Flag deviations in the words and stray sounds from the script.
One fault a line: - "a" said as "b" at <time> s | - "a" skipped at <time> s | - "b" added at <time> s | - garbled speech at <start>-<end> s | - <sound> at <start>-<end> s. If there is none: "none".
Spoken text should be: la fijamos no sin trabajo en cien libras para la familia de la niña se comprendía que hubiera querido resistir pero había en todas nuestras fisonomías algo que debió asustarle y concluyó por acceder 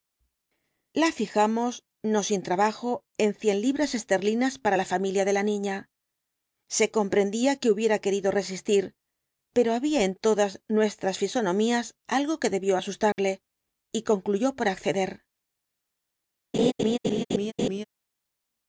- "esterlinas" added at 3.9 s
- dropout at 13.1-13.2 s
- laugh at 16.5-17.8 s